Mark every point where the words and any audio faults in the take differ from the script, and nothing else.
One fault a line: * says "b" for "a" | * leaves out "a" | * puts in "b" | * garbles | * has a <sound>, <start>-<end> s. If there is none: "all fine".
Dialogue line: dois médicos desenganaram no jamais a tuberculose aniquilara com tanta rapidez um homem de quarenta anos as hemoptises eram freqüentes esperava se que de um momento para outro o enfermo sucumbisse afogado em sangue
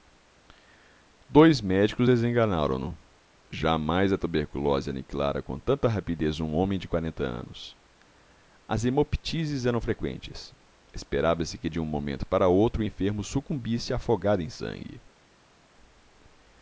all fine